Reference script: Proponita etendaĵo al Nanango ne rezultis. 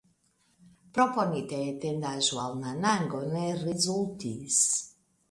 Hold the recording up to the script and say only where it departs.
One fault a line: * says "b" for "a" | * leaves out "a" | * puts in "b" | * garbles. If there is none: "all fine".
all fine